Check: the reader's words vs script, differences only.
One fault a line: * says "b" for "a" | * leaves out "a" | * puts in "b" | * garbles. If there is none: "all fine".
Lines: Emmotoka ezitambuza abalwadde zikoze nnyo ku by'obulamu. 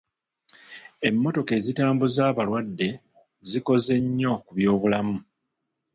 all fine